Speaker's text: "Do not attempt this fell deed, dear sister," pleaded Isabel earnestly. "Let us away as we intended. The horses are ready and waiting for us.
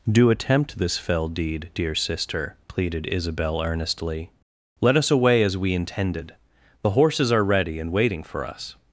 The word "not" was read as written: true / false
false